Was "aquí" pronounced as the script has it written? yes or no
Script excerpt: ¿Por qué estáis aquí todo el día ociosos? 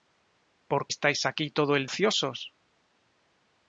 yes